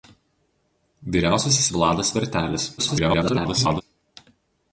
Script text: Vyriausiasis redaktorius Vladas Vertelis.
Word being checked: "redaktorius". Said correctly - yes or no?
no